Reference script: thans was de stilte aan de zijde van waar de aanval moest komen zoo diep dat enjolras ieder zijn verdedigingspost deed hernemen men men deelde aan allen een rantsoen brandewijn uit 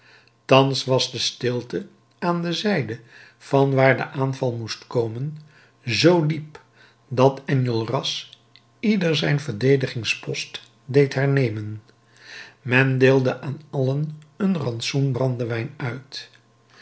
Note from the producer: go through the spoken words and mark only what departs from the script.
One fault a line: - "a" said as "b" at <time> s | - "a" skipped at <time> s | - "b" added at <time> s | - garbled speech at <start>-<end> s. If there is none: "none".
- "men" skipped at 13.0 s